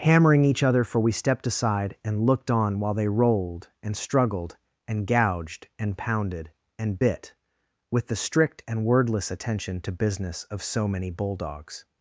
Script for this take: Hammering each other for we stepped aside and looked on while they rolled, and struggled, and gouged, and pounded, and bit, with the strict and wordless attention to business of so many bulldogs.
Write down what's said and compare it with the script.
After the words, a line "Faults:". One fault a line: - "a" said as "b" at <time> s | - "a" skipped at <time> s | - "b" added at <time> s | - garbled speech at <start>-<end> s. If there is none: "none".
Hammering each other for we stepped aside and looked on while they rolled, and struggled, and gouged, and pounded, and bit, with the strict and wordless attention to business of so many bulldogs.
Faults:
none